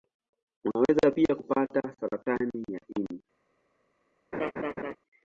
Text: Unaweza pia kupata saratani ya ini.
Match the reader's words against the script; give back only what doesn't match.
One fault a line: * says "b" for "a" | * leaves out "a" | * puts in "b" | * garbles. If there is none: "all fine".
all fine